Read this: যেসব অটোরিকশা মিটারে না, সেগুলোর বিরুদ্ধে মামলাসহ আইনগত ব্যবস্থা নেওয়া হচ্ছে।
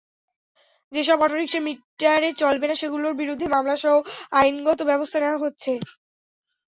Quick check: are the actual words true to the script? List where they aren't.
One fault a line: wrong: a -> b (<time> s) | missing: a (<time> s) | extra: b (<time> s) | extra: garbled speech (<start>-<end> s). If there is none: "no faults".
extra: চলবে (2.4 s)